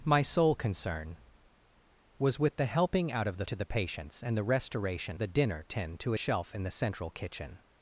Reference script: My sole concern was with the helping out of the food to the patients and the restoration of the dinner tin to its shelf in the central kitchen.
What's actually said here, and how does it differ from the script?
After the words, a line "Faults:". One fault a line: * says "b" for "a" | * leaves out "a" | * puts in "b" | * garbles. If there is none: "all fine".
My sole concern was with the helping out of the to the patients and the restoration the dinner tin to shelf in the central kitchen.
Faults:
* leaves out "food"
* leaves out "of"
* leaves out "its"